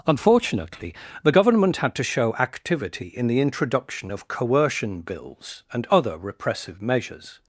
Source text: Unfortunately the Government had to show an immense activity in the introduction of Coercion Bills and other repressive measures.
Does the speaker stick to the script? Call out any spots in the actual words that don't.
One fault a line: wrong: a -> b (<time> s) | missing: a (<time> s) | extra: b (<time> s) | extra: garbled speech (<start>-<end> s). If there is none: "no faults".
missing: an immense (2.3 s)